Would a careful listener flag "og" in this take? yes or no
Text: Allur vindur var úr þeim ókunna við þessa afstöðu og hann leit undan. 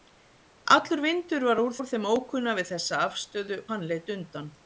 yes